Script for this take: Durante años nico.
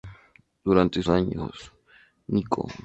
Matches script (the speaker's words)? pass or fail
pass